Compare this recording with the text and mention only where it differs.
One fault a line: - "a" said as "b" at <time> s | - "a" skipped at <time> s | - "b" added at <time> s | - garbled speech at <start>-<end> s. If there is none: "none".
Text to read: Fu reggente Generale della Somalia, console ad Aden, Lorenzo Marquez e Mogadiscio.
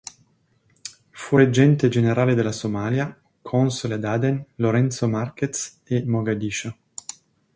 none